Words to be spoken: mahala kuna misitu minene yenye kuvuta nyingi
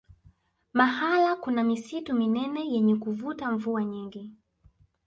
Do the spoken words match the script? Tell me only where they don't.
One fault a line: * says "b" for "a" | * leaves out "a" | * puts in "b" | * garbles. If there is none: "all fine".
* puts in "mvua"